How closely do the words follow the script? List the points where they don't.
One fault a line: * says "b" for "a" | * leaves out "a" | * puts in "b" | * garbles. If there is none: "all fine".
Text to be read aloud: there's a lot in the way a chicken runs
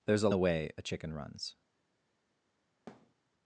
* leaves out "lot in"